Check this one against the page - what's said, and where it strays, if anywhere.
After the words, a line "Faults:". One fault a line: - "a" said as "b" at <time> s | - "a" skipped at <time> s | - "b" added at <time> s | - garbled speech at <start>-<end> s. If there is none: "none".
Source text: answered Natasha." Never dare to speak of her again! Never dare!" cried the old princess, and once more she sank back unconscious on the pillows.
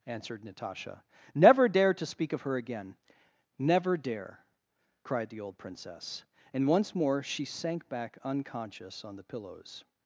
answered Natasha." Never dare to speak of her again! Never dare!" cried the old princess, and once more she sank back unconscious on the pillows.
Faults:
none